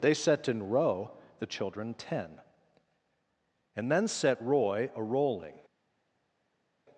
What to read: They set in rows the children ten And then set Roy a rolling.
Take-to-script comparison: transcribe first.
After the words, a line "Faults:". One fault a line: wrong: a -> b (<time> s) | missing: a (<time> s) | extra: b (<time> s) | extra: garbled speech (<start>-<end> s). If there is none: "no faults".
They set in row the children ten And then set Roy a rolling.
Faults:
wrong: rows -> row (0.7 s)